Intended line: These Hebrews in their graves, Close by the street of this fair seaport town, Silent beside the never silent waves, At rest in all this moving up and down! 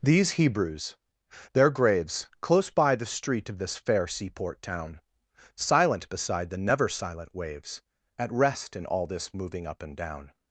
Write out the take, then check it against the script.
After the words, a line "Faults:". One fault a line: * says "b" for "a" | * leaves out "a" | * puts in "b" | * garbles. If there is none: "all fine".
These Hebrews their graves, Close by the street of this fair seaport town, Silent beside the never silent waves, At rest in all this moving up and down!
Faults:
* leaves out "in"